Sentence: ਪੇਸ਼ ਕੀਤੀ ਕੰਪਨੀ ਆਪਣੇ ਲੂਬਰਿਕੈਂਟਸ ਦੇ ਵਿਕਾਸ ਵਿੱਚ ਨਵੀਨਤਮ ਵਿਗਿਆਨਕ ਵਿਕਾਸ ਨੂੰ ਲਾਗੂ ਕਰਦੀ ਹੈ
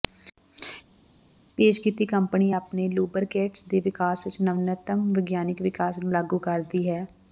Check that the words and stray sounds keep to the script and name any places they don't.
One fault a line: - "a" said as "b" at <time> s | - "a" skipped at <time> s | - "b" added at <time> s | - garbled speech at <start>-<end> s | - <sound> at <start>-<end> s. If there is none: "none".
none